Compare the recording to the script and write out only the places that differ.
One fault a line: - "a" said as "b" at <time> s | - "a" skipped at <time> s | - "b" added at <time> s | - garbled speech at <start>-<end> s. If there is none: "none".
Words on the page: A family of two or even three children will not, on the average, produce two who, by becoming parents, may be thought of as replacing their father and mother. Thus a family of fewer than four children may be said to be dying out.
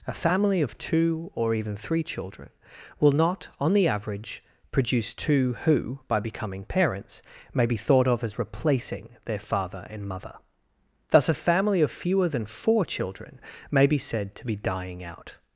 none